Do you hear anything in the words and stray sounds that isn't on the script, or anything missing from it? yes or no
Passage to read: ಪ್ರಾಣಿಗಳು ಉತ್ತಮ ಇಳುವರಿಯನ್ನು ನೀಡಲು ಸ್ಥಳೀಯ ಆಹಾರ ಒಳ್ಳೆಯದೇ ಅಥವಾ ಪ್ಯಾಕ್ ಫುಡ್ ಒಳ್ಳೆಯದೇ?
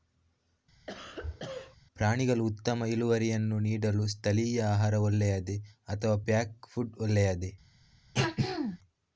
yes